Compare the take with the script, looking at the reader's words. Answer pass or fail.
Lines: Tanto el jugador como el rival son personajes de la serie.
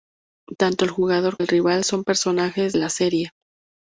fail